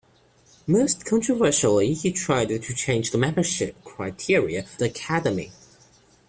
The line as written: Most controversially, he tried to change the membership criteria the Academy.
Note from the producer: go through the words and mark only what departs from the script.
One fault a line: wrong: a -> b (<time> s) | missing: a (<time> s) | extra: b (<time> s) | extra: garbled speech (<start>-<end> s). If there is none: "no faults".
no faults